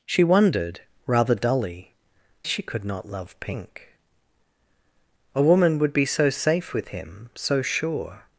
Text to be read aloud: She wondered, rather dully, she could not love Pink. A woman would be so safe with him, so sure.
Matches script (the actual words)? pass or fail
pass